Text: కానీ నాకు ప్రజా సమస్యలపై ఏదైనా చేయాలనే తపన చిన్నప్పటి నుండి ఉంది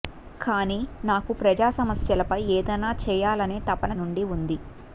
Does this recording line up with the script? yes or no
no